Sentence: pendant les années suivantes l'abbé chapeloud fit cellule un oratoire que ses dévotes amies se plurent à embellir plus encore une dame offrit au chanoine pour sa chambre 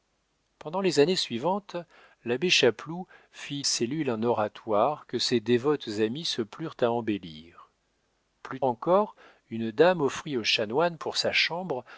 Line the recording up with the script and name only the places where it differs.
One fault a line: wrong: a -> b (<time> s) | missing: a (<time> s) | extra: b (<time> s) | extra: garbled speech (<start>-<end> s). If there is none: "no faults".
no faults